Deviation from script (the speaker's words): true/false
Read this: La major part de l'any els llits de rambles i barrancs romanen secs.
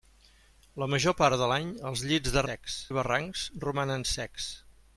true